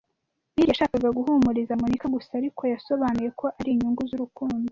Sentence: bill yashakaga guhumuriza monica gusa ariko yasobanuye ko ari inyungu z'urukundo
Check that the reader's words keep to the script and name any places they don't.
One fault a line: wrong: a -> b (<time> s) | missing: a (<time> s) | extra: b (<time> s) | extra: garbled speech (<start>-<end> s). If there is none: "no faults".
no faults